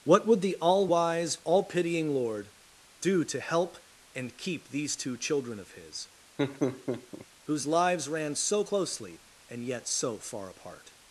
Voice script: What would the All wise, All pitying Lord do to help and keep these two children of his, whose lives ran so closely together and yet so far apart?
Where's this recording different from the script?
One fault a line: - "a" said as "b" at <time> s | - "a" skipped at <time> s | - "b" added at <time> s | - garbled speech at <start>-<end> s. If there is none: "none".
- "together" skipped at 9.2 s